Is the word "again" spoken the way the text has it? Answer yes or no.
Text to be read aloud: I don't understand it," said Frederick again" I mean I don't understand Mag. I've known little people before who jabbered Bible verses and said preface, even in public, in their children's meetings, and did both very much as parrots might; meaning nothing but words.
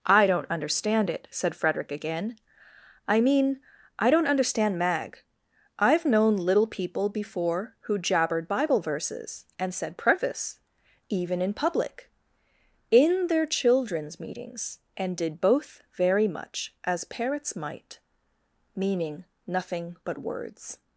yes